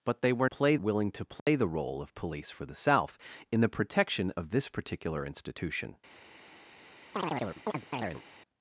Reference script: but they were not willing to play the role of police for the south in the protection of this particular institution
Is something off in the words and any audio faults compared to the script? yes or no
yes